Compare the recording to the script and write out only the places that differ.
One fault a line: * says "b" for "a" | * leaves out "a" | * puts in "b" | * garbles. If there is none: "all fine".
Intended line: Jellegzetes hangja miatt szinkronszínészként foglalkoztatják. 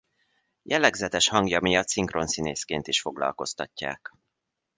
* puts in "is"